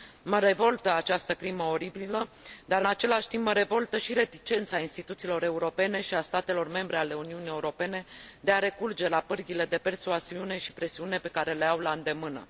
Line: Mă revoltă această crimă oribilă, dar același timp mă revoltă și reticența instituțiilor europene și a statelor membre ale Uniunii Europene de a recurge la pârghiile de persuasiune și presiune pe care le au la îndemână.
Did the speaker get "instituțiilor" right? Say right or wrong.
right